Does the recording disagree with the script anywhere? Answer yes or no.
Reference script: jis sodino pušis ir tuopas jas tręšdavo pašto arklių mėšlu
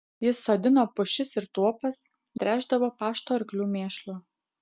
yes